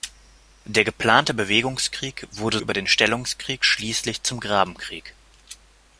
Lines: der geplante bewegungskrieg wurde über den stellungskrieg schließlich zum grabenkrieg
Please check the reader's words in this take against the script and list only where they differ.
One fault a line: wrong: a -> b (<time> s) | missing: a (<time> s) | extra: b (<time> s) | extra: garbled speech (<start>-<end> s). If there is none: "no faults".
no faults